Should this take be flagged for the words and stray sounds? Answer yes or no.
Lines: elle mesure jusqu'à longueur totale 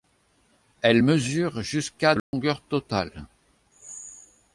yes